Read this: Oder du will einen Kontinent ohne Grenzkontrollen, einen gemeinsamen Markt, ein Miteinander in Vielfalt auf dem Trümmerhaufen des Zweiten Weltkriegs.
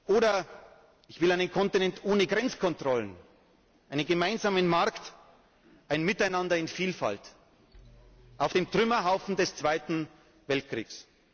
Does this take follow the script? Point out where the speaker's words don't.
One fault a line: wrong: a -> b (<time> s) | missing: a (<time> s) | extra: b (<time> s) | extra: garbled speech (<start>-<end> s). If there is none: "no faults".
wrong: du -> ich (1.1 s)